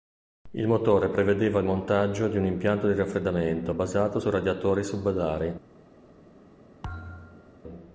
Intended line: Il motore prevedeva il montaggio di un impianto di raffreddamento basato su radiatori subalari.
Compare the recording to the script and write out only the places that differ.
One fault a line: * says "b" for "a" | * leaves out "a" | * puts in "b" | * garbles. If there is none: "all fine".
all fine